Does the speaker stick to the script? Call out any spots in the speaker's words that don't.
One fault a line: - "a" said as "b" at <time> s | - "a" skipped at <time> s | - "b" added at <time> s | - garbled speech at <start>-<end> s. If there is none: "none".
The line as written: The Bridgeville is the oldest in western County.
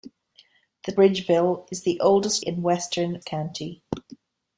none